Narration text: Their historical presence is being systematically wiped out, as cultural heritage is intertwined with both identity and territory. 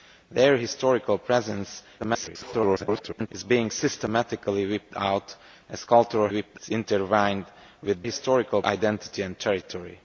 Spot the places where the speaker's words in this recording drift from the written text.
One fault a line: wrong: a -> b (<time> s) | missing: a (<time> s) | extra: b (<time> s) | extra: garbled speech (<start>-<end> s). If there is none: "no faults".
extra: garbled speech (2.0-3.3 s)
wrong: heritage -> wiped (6.3 s)
wrong: both -> historical (8.0 s)